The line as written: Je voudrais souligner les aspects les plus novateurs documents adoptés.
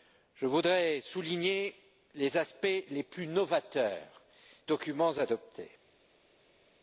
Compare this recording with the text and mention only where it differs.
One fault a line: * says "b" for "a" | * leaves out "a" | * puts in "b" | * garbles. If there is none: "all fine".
all fine